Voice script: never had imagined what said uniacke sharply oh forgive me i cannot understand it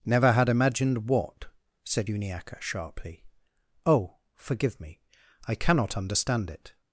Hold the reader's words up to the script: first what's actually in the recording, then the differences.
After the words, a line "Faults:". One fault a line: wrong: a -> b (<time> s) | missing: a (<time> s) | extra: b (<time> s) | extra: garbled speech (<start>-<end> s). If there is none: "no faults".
never had imagined what said uniacke sharply oh forgive me i cannot understand it
Faults:
no faults